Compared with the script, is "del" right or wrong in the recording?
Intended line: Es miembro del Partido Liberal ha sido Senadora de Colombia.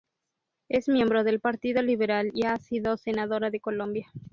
right